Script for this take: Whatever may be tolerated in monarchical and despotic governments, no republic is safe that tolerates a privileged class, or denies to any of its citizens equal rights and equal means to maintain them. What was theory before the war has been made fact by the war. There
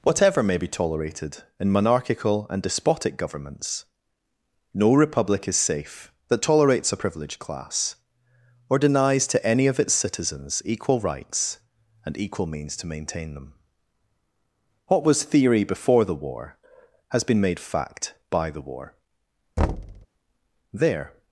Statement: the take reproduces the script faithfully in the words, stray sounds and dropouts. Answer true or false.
false